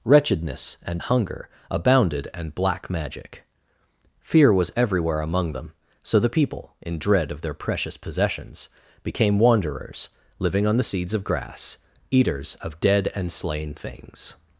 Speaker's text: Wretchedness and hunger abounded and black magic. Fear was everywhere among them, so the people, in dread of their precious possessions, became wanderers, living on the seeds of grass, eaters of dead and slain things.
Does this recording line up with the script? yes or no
yes